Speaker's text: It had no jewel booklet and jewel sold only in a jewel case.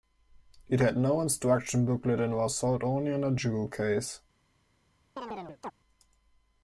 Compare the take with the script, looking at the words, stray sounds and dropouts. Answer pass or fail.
fail